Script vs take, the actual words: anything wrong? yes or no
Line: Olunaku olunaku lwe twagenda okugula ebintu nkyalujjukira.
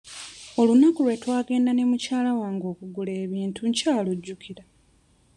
yes